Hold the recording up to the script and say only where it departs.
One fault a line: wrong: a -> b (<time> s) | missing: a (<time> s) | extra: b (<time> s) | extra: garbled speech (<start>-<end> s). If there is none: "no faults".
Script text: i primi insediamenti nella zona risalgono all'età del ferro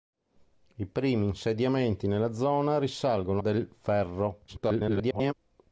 missing: all'età (3.4 s)
extra: garbled speech (4.5-5.3 s)